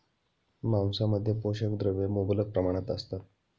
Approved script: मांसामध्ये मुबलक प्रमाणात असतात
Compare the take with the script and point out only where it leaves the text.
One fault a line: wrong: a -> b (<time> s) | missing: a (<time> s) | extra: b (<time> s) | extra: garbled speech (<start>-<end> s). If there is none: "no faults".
extra: पोषक द्रव्ये (1.4 s)